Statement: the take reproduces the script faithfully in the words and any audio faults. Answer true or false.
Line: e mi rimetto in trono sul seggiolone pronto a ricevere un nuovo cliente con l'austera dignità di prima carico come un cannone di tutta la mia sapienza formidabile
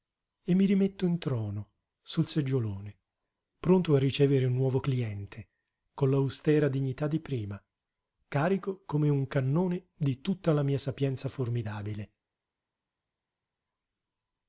true